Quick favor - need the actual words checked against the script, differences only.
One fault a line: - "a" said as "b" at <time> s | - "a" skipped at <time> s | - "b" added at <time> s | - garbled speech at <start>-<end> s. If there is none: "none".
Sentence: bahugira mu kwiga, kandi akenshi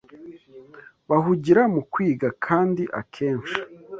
none